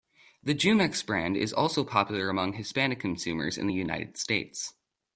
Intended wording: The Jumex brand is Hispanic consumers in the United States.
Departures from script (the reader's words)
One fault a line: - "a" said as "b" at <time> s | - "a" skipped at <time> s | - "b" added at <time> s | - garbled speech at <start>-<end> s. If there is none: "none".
- "also popular among" added at 1.5 s